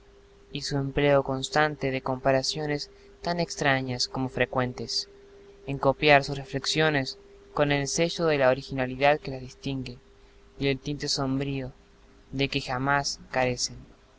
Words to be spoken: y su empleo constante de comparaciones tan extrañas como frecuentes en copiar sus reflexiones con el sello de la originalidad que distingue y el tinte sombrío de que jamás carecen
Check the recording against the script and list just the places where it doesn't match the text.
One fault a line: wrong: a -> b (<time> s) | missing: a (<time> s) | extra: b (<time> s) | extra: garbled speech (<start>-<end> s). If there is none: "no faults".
extra: las (9.3 s)